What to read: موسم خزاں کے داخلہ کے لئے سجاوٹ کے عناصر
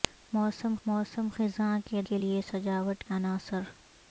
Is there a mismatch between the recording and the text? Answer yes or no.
yes